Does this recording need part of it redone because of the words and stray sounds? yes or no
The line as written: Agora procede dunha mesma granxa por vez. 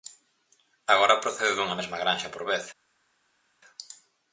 no